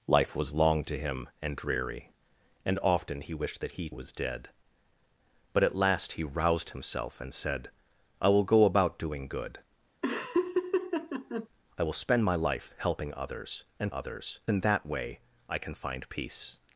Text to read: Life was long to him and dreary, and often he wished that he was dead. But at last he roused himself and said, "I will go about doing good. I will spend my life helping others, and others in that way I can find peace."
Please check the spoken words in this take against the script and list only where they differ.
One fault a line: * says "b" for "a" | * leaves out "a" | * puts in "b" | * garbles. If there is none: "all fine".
all fine